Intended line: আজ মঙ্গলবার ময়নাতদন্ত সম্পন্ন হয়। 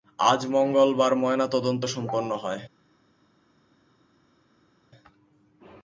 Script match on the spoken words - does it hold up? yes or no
yes